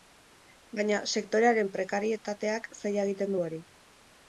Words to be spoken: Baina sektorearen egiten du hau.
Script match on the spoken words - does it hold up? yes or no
no